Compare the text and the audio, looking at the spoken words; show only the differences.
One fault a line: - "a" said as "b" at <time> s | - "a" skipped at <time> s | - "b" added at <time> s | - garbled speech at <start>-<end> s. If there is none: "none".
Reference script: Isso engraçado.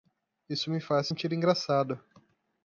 - "me faz sentir" added at 0.7 s